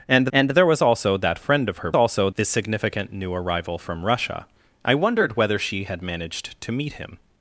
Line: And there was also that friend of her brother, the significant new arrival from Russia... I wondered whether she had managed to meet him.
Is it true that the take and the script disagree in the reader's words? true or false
true